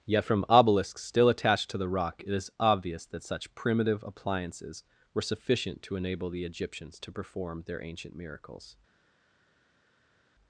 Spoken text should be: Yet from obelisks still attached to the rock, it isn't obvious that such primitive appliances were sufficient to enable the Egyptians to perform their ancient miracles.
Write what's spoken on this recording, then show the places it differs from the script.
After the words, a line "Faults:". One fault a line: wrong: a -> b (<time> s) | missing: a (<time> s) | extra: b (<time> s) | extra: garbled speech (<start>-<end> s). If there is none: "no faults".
Yet from obelisks still attached to the rock, it is obvious that such primitive appliances were sufficient to enable the Egyptians to perform their ancient miracles.
Faults:
wrong: isn't -> is (2.3 s)